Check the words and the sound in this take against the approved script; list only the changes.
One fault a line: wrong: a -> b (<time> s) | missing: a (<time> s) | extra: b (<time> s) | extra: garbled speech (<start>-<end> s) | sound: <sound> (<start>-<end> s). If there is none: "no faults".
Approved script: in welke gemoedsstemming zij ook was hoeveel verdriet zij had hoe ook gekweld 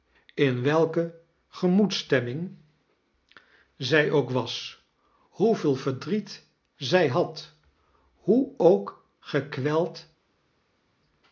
no faults